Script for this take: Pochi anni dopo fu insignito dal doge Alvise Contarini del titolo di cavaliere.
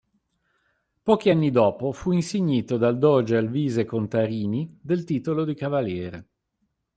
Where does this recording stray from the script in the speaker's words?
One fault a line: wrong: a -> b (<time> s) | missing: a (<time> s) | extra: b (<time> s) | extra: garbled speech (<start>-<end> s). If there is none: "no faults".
no faults